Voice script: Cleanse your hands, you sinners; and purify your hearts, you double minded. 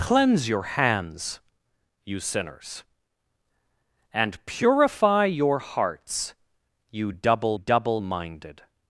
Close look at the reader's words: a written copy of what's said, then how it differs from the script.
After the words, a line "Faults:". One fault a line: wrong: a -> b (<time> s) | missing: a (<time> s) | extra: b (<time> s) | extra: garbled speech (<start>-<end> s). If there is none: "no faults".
Cleanse your hands, you sinners; and purify your hearts, you double double minded.
Faults:
extra: double (7.5 s)